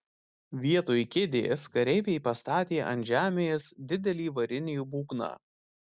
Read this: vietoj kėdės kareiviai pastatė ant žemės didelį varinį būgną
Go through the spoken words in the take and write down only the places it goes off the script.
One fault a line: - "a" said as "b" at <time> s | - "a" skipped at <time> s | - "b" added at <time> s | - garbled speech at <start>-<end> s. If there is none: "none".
none